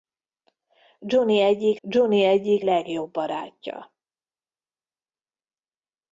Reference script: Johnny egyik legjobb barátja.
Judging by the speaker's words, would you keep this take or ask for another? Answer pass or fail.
fail